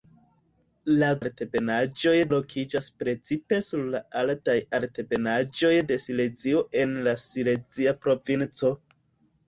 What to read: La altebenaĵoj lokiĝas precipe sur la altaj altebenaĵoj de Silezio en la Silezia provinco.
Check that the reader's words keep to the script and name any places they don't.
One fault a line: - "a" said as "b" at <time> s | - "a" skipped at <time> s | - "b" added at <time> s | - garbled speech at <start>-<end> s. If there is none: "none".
none